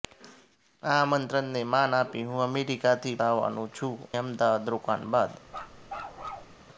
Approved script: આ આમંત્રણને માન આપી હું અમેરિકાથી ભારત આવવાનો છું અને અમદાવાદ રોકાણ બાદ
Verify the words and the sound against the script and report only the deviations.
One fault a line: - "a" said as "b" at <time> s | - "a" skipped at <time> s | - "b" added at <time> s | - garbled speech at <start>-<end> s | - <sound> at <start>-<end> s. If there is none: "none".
- "ભારત" skipped at 3.1 s
- "અને" skipped at 3.9 s
- bark at 5.5-6.6 s